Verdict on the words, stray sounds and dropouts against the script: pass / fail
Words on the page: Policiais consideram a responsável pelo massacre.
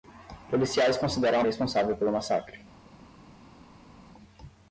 pass